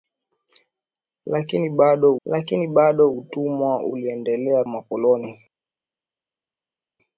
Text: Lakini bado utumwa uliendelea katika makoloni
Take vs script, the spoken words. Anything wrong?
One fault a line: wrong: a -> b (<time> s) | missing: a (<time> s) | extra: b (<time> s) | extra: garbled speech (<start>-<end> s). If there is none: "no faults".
extra: lakini bado (2.2 s)
missing: katika (4.6 s)